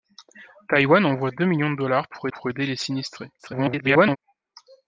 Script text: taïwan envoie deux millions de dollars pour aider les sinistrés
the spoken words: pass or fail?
fail